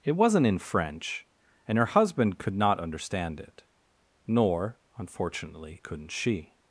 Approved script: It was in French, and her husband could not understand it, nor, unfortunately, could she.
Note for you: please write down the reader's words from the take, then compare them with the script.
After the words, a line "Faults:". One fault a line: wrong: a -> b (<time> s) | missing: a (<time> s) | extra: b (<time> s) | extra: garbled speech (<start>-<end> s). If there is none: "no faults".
It wasn't in French, and her husband could not understand it, nor, unfortunately, couldn't she.
Faults:
wrong: was -> wasn't (0.1 s)
wrong: could -> couldn't (5.8 s)